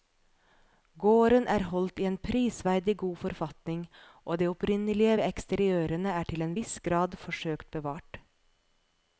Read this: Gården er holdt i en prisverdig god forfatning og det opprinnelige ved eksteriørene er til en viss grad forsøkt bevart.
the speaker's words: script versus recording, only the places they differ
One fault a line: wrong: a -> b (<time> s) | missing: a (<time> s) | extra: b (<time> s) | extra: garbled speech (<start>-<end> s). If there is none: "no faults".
no faults